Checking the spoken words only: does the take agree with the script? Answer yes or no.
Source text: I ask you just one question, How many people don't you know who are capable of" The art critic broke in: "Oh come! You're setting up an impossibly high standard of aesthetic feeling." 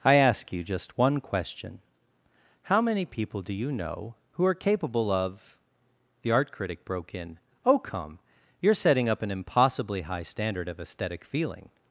no